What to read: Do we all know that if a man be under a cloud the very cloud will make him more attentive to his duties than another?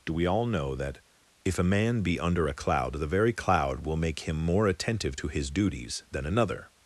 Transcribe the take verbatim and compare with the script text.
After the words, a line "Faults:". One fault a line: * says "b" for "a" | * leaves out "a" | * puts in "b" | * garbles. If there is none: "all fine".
Do we all know that if a man be under a cloud the very cloud will make him more attentive to his duties than another?
Faults:
all fine